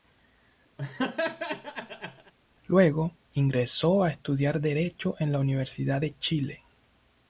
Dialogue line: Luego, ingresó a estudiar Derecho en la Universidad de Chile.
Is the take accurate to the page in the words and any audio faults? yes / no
no